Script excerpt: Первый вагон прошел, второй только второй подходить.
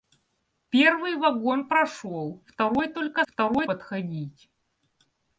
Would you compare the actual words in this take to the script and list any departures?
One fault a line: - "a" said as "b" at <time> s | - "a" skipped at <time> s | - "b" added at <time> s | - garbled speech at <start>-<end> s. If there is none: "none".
none